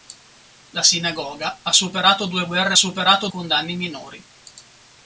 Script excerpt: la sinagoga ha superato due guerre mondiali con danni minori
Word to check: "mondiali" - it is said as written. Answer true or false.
false